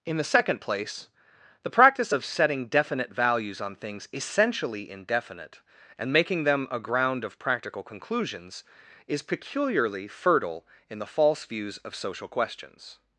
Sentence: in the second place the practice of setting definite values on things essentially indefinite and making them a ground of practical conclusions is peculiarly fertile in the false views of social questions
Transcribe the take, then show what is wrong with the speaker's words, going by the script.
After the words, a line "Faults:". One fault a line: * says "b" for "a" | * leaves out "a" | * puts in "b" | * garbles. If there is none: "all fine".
in the second place the practice of setting definite values on things essentially indefinite and making them a ground of practical conclusions is peculiarly fertile in the false views of social questions
Faults:
all fine